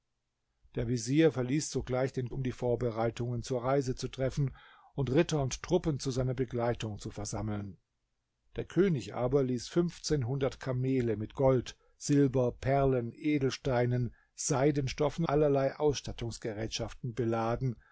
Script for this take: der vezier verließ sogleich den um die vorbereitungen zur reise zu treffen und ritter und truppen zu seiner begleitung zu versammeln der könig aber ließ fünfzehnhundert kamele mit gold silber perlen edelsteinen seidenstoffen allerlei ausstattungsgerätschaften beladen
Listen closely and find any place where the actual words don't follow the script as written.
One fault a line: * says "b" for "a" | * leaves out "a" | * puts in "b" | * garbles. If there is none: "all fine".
all fine